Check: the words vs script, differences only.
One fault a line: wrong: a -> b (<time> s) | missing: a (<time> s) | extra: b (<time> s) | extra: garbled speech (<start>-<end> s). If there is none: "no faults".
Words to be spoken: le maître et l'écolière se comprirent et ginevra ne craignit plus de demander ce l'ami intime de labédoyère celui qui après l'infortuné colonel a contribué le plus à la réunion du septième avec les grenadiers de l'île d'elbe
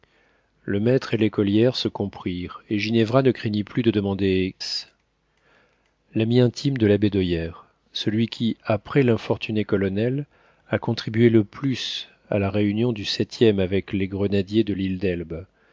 no faults